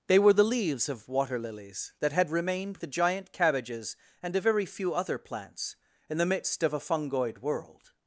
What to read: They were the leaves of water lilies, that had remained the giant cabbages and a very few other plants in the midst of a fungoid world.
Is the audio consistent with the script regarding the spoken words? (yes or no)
yes